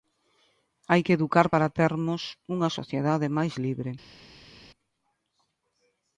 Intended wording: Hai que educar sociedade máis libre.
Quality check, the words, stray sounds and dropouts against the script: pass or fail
fail